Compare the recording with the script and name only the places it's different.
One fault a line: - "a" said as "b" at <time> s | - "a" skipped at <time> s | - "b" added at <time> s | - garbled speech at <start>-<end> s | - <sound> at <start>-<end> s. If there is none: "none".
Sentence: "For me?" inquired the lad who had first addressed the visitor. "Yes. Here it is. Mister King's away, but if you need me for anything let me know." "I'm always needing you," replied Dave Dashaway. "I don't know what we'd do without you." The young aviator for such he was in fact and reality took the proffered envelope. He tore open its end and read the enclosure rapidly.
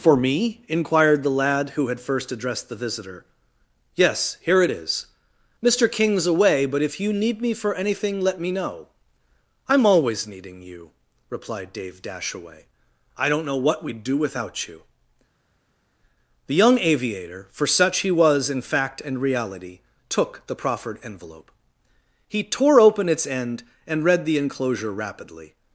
none